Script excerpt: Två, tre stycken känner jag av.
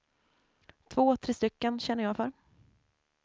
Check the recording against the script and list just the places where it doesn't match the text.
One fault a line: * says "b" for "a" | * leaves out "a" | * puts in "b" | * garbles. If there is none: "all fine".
* says "för" for "av"